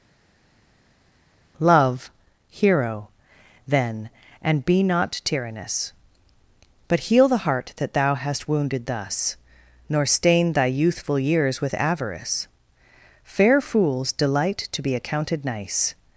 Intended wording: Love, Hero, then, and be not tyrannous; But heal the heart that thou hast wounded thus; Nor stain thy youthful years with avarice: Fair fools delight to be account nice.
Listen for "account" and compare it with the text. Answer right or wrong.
wrong